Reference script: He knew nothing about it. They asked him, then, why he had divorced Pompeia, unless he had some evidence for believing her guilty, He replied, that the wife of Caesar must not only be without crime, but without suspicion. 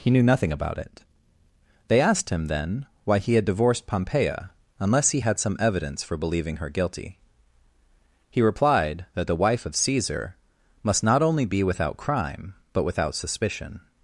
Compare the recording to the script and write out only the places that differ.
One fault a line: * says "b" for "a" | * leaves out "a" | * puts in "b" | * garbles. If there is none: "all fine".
all fine